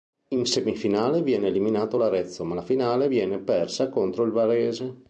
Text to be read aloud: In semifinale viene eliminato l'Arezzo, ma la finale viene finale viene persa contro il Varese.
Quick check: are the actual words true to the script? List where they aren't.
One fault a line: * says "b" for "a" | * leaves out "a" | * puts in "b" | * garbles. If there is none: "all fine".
* leaves out "finale viene"